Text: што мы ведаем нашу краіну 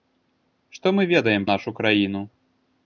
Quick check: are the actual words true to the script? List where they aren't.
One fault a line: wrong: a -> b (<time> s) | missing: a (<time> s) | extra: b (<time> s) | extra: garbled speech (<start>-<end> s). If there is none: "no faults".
no faults